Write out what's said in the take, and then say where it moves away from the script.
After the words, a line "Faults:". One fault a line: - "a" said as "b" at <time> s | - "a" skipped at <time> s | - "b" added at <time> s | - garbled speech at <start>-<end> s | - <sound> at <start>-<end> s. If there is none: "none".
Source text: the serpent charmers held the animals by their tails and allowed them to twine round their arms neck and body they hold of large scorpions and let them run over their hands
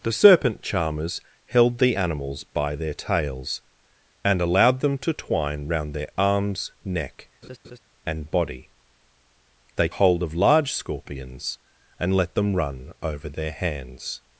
the serpent charmers held the animals by their tails and allowed them to twine round their arms neck and body they hold of large scorpions and let them run over their hands
Faults:
- laugh at 7.4-7.8 s